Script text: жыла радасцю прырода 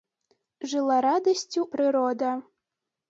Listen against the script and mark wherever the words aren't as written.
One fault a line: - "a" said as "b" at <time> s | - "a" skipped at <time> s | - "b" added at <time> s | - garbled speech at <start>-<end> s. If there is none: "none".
none